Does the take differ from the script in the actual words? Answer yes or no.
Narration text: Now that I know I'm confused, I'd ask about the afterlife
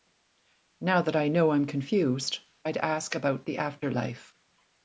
no